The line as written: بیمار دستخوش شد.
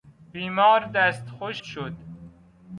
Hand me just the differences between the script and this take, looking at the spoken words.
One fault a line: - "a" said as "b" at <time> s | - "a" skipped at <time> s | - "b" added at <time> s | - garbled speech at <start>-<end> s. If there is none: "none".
none